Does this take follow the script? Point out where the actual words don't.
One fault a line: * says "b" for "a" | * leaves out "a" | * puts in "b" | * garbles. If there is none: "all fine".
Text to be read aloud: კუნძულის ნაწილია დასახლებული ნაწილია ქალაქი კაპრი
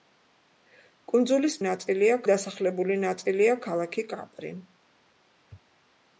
all fine